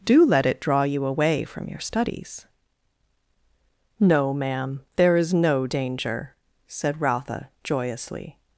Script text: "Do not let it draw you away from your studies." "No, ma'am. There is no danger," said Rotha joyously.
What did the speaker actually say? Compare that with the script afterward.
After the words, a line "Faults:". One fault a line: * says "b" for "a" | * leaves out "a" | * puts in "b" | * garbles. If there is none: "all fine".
"Do let it draw you away from your studies." "No, ma'am. There is no danger," said Rotha joyously.
Faults:
* leaves out "not"